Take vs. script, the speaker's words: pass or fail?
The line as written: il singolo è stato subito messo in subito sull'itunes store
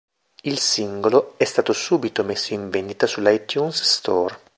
fail